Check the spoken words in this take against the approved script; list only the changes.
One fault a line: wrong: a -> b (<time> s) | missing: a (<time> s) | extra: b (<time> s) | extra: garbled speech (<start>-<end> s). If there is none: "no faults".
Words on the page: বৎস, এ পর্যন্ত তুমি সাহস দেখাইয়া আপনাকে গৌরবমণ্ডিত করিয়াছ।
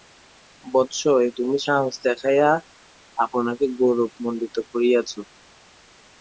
missing: পর্যন্ত (1.3 s)